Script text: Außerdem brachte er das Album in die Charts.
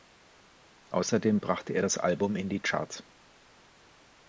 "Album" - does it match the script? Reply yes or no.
yes